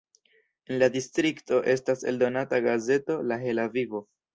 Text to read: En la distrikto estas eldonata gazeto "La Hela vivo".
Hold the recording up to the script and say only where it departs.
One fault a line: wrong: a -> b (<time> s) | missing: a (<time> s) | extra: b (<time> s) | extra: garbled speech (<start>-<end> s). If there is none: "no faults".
no faults